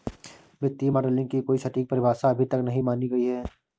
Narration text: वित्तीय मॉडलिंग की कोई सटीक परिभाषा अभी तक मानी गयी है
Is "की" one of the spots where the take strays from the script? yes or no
no